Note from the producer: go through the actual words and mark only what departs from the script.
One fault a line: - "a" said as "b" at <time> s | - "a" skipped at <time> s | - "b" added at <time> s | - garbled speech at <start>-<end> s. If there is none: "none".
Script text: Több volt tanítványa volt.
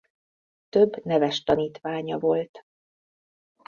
- "volt" said as "neves" at 1.1 s